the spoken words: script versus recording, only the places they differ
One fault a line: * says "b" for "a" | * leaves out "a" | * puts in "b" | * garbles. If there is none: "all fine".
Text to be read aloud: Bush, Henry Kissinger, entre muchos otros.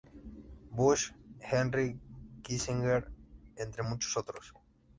all fine